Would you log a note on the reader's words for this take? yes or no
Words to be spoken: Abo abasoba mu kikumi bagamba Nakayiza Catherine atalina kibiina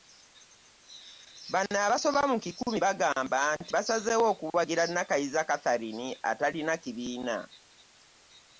yes